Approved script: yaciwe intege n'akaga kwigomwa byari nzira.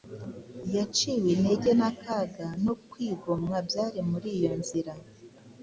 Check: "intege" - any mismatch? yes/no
no